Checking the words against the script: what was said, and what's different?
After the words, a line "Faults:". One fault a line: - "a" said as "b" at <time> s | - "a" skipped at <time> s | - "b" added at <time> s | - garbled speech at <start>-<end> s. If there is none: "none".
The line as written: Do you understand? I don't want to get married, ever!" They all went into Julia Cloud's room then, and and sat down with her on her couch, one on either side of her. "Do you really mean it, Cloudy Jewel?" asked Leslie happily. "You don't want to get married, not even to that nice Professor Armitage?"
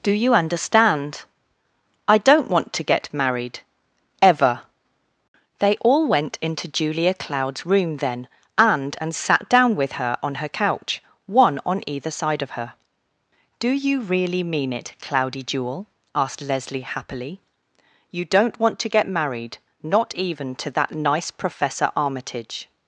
Do you understand? I don't want to get married, ever!" They all went into Julia Cloud's room then, and and sat down with her on her couch, one on either side of her. "Do you really mean it, Cloudy Jewel?" asked Leslie happily. "You don't want to get married, not even to that nice Professor Armitage?"
Faults:
none